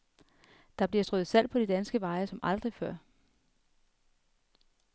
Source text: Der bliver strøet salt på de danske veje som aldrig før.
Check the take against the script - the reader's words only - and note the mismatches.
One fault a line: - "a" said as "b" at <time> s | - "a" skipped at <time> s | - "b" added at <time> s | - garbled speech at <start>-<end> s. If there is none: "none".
none